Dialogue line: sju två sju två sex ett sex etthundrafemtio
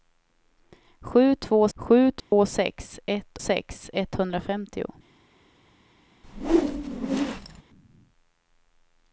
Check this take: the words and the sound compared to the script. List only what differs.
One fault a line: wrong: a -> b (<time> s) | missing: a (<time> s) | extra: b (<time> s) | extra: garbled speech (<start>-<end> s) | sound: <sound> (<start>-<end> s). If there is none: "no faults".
sound: dropout (2.2-2.3 s)
sound: whoosh (6.2-7.6 s)